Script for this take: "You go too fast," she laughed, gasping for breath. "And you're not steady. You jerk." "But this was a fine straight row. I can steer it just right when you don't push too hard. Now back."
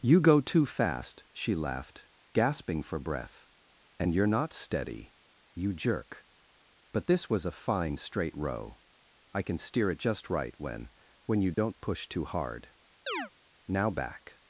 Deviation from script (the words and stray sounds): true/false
true